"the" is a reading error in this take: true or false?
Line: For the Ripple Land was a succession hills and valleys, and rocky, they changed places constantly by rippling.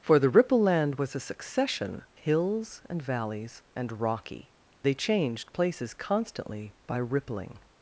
false